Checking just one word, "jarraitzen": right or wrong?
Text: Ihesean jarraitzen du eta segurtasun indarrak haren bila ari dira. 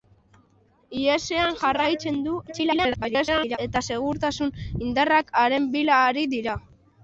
right